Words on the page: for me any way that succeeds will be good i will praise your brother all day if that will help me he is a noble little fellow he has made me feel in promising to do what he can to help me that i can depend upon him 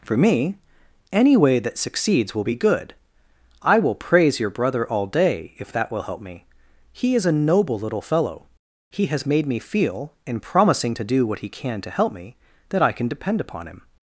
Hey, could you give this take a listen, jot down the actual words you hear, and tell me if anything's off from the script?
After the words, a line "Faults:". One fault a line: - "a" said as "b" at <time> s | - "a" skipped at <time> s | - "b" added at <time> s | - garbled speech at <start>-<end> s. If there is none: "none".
for me any way that succeeds will be good i will praise your brother all day if that will help me he is a noble little fellow he has made me feel in promising to do what he can to help me that i can depend upon him
Faults:
none